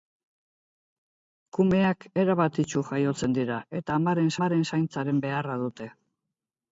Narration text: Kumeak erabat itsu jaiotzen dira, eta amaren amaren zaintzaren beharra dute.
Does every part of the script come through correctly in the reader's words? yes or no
yes